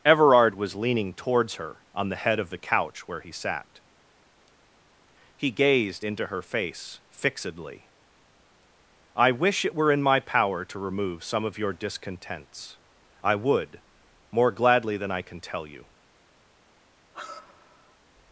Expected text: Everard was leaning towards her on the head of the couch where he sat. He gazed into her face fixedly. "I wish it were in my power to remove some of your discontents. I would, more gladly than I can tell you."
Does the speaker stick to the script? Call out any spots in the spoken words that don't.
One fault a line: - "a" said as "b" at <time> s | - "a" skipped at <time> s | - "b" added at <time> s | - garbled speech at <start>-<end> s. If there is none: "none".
none